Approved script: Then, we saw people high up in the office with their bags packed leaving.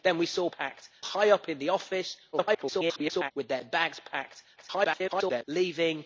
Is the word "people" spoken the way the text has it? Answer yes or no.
no